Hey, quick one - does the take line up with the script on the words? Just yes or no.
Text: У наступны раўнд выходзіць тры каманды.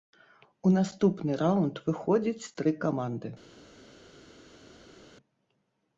yes